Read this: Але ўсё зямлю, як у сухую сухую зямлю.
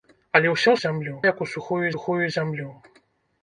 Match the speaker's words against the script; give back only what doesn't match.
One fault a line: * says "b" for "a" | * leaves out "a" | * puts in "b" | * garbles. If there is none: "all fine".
all fine